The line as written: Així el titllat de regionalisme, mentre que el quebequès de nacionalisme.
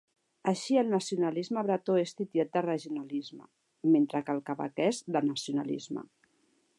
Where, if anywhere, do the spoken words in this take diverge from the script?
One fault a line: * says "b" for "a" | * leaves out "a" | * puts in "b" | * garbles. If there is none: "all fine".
* puts in "nacionalisme bretó és"